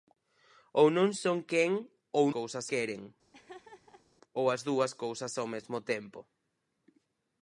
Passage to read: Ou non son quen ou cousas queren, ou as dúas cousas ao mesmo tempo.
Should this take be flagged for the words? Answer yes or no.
no